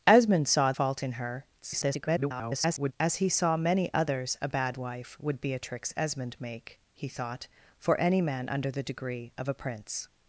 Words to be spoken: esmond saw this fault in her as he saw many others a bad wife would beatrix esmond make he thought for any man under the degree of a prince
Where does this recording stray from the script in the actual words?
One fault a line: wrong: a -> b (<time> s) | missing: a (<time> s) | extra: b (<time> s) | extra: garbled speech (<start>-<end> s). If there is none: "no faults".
missing: this (0.7 s)
extra: garbled speech (1.6-2.9 s)